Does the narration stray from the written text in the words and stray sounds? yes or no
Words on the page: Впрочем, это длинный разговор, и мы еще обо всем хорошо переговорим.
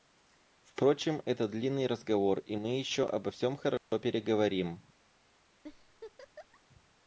yes